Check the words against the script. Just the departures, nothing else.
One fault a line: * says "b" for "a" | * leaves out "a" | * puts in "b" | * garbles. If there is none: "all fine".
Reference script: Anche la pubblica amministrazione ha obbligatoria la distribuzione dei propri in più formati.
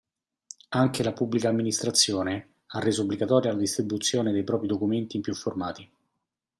* puts in "reso"
* puts in "documenti"